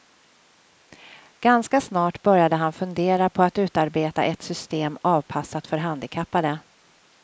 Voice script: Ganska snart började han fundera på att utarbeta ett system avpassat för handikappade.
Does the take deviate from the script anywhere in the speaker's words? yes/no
no